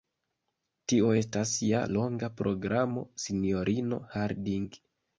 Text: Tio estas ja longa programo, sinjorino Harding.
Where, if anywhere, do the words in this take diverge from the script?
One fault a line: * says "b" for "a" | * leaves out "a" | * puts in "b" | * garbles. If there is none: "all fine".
all fine